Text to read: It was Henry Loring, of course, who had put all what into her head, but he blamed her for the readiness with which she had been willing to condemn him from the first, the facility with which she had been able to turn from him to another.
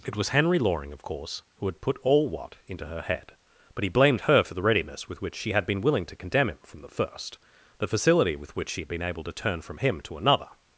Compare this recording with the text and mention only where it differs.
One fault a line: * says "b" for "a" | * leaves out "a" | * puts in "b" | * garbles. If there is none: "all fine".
all fine